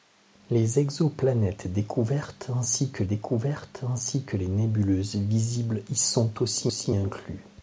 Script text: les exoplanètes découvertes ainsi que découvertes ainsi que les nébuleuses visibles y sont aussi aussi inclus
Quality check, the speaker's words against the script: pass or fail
pass